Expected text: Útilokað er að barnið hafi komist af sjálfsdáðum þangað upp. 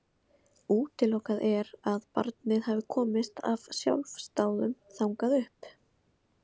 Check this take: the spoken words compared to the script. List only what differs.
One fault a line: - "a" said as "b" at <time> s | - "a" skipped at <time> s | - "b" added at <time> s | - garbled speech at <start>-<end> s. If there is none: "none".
none